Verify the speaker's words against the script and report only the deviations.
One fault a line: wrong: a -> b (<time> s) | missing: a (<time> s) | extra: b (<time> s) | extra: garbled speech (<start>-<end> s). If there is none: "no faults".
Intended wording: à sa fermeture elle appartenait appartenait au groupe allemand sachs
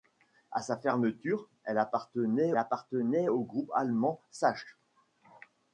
no faults